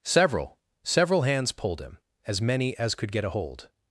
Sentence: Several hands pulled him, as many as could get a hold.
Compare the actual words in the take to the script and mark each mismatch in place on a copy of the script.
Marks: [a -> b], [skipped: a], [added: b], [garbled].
Several [added: several] hands pulled him, as many as could get a hold.